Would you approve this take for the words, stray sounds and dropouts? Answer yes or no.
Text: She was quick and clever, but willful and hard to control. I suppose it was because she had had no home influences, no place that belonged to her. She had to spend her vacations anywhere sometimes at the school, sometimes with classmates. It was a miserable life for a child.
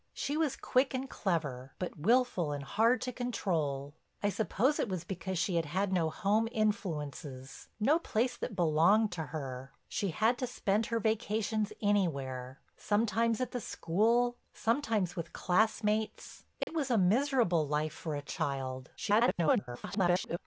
no